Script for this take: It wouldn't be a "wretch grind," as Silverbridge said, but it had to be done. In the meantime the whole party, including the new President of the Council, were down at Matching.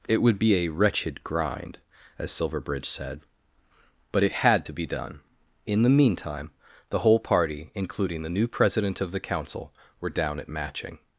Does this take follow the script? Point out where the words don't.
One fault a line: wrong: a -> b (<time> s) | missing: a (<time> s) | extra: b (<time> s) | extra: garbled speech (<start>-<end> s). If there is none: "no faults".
wrong: wouldn't -> would (0.2 s)
wrong: wretch -> wretched (0.7 s)